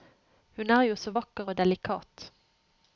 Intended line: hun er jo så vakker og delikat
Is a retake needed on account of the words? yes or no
no